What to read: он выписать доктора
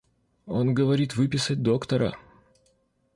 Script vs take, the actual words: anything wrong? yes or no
yes